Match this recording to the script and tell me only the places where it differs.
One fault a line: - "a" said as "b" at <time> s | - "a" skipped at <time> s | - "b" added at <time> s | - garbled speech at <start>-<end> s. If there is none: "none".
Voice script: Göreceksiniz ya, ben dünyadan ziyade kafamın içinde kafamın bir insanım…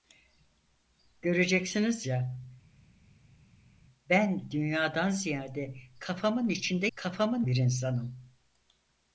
none